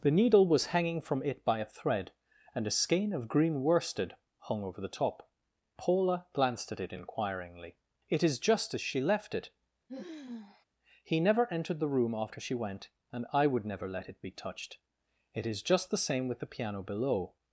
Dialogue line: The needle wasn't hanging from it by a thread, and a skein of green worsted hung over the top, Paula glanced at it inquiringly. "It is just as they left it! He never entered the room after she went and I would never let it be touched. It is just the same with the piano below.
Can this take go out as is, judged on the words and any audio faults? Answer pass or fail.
fail